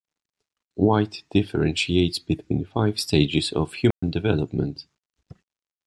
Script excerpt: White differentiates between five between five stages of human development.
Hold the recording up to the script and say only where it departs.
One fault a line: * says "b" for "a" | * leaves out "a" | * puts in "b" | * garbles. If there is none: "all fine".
* leaves out "between five"